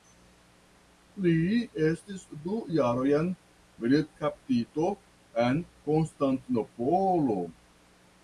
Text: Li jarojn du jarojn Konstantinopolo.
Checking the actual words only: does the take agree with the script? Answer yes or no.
no